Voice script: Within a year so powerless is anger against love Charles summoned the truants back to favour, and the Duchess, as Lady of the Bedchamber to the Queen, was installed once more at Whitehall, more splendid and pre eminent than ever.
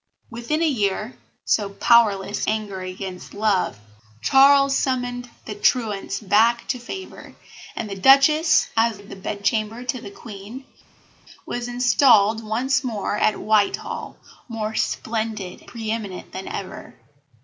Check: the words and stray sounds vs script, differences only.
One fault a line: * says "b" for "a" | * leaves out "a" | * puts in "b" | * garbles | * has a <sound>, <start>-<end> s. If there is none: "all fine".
* leaves out "is"
* leaves out "Lady"
* leaves out "and"